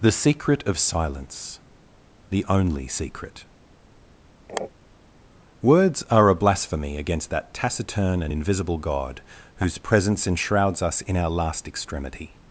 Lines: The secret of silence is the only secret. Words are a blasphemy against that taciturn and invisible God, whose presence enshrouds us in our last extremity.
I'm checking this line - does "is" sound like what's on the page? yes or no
no